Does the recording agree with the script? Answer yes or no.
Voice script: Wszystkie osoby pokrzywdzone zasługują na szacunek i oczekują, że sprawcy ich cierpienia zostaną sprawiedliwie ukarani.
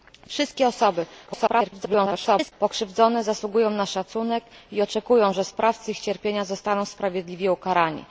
no